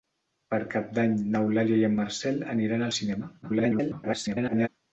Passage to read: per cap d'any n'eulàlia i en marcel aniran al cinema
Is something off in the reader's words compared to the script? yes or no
yes